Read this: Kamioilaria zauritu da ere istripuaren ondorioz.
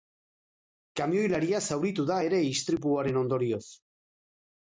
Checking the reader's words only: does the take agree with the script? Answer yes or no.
yes